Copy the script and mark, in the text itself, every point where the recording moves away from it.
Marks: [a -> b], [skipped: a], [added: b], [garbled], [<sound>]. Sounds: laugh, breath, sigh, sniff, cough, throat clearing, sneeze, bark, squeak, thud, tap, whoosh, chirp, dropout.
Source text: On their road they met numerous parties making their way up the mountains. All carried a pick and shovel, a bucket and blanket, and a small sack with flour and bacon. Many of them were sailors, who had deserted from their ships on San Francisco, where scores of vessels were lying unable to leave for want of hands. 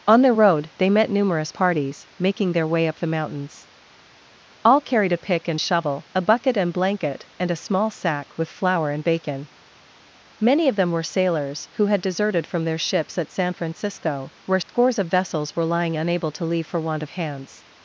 On their road they met numerous parties making their way up the mountains. All carried a pick and shovel, a bucket and blanket, and a small sack with flour and bacon. Many of them were sailors, who had deserted from their ships [on -> at] San Francisco, where scores [dropout] of vessels were lying unable to leave for want of hands.